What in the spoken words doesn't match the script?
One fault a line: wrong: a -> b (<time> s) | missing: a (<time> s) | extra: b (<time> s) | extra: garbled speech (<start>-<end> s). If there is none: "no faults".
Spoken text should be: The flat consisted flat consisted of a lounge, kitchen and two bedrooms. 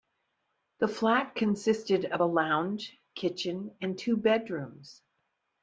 missing: flat consisted (2.0 s)